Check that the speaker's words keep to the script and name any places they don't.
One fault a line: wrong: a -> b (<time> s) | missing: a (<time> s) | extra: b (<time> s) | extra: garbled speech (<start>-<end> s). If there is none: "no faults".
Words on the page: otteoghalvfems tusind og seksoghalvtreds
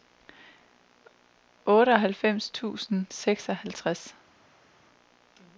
no faults